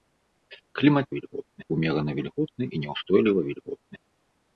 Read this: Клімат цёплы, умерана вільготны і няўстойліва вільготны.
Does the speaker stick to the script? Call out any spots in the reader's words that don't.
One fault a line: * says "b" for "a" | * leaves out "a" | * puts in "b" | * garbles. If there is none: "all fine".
* says "вільготны" for "цёплы"